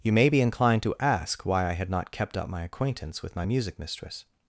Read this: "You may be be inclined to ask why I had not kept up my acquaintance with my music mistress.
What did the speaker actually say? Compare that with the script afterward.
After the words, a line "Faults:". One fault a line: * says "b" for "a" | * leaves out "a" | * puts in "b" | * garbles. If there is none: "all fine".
"You may be inclined to ask why I had not kept up my acquaintance with my music mistress.
Faults:
* leaves out "be"